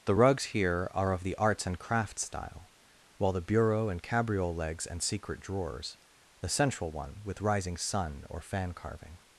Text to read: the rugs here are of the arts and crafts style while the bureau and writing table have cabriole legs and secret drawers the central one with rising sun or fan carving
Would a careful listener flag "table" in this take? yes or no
yes